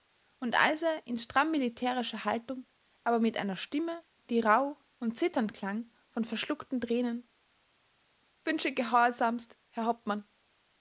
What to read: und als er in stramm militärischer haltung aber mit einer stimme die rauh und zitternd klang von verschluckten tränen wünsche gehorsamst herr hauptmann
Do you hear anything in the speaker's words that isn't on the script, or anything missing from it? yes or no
no